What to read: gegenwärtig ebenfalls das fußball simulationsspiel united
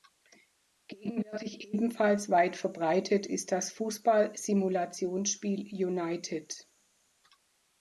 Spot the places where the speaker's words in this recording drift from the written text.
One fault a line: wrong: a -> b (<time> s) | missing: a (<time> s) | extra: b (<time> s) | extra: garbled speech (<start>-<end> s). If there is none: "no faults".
extra: weit verbreitet ist (2.3 s)